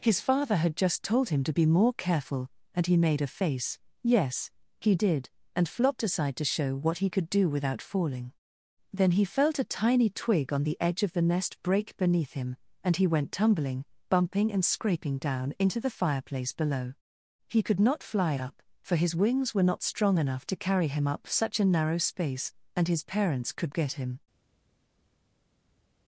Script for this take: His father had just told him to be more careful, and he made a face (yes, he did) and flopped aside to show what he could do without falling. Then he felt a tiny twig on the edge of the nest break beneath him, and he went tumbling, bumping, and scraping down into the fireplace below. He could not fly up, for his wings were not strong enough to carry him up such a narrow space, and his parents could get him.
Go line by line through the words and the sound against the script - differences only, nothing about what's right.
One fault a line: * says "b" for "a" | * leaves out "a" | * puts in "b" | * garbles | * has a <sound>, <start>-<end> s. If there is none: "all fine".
all fine